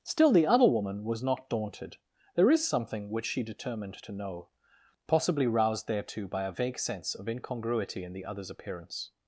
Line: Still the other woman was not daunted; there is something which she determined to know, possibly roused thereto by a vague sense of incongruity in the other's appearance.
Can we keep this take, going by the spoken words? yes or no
yes